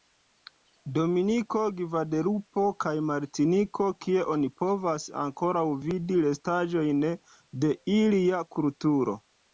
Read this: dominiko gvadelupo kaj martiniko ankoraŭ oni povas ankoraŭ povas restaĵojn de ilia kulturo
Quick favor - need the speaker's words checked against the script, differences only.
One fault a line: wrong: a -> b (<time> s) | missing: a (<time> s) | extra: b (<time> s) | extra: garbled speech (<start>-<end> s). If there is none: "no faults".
wrong: ankoraŭ -> kie (4.0 s)
wrong: povas -> vidi (5.8 s)